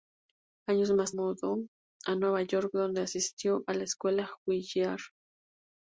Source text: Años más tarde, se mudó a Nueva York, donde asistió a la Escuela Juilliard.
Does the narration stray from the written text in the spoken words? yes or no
yes